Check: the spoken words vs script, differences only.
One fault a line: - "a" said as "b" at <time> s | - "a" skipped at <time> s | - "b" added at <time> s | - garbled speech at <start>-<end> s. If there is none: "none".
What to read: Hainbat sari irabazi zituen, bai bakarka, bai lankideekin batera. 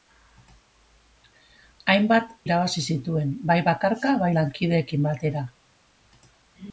- "sari" skipped at 2.3 s